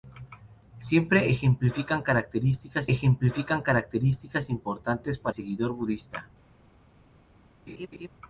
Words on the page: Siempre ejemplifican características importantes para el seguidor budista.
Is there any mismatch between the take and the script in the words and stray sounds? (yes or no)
yes